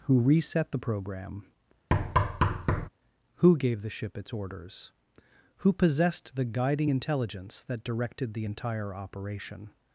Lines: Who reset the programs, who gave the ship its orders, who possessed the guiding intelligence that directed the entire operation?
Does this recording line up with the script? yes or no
no